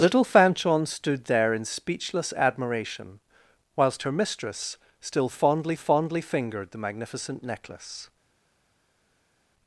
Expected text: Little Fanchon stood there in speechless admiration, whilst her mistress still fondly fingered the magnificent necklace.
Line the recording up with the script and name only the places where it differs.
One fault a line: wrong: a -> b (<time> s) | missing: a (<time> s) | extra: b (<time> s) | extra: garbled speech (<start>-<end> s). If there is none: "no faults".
extra: fondly (5.8 s)